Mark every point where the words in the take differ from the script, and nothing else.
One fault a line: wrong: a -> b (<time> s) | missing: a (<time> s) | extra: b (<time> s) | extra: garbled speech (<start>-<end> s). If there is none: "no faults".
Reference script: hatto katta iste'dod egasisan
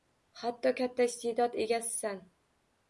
no faults